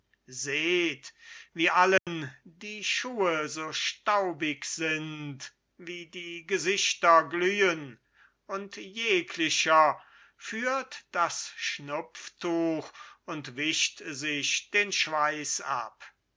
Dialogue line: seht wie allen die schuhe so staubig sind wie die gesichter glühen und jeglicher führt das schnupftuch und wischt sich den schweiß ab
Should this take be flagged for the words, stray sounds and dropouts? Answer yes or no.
yes